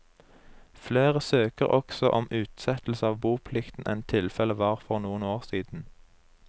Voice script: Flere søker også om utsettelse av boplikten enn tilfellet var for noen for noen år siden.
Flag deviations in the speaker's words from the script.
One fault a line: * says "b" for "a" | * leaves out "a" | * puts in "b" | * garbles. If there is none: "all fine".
* leaves out "for noen"